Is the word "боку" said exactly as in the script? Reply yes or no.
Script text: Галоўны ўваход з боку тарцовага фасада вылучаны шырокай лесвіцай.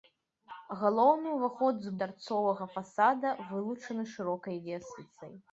no